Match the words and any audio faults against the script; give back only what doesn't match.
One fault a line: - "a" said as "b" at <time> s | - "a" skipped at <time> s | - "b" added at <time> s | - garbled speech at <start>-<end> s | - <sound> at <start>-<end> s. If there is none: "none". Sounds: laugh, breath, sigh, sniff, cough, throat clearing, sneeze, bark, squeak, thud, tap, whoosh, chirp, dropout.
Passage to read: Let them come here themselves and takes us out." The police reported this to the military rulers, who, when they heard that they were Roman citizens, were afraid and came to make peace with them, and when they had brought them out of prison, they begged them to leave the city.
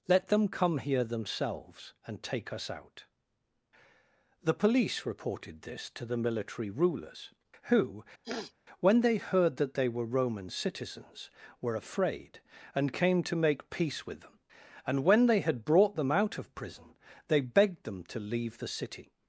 - "takes" said as "take" at 2.2 s
- sniff at 8.2-8.5 s